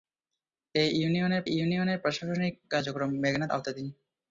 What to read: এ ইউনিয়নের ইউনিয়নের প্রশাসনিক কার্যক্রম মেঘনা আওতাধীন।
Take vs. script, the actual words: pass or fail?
pass